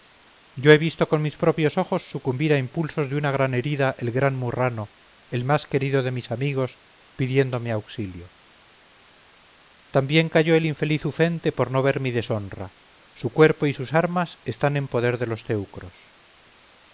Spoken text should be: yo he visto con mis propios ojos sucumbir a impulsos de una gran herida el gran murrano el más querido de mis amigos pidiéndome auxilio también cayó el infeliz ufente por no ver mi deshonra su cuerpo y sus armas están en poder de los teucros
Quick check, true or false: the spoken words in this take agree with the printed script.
true